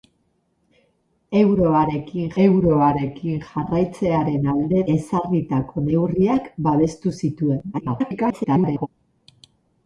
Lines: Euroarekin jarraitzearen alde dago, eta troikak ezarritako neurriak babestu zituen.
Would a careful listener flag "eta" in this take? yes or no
yes